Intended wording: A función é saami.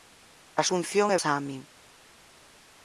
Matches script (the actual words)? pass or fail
pass